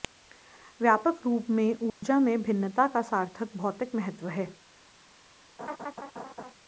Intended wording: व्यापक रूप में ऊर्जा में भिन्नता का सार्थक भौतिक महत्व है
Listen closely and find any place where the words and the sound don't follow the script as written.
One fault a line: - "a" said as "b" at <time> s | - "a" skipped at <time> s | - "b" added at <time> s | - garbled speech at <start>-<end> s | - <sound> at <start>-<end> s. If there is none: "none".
- dropout at 1.9-2.0 s
- laugh at 5.6-6.5 s